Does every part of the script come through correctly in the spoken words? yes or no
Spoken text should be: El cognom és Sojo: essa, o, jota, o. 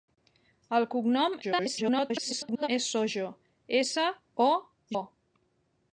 no